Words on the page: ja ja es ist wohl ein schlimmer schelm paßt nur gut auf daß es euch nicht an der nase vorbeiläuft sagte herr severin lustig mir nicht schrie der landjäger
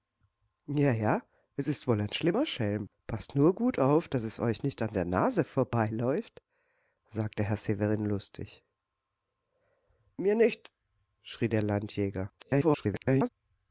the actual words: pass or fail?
fail